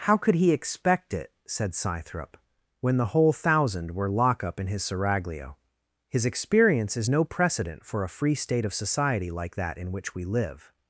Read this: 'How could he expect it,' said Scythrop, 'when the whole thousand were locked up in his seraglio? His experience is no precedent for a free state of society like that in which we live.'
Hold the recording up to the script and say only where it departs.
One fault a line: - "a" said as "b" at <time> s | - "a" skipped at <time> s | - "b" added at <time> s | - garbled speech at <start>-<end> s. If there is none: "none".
- "locked" said as "lock" at 4.1 s